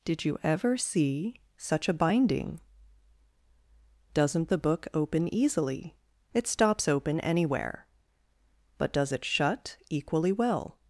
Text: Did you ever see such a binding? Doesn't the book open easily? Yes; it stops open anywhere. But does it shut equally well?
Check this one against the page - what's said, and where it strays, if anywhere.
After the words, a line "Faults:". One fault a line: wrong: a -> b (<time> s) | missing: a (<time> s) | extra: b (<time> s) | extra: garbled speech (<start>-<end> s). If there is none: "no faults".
Did you ever see such a binding? Doesn't the book open easily; It stops open anywhere. But does it shut equally well?
Faults:
missing: Yes (6.0 s)